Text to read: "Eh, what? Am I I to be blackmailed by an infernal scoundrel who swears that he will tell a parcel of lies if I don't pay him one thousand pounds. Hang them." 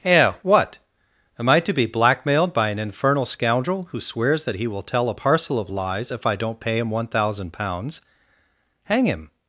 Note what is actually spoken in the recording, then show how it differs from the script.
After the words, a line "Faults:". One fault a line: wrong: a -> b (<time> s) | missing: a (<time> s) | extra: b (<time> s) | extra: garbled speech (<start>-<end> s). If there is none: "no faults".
"Eh, what? Am I to be blackmailed by an infernal scoundrel who swears that he will tell a parcel of lies if I don't pay him one thousand pounds. Hang him."
Faults:
missing: I (1.6 s)
wrong: them -> him (9.1 s)